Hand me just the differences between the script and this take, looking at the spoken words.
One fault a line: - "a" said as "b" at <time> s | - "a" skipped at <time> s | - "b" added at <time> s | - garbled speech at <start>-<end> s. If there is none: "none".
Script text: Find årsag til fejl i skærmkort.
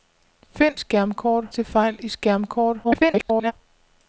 - "årsag" said as "skærmkort" at 0.8 s
- garbled speech at 2.8-3.5 s